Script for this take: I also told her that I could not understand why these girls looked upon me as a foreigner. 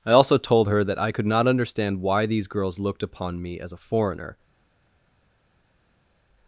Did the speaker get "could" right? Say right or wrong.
right